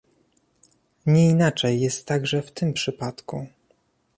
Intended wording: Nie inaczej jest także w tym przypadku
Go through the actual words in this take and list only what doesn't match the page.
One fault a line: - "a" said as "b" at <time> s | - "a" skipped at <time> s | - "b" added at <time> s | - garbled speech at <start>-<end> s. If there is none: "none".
none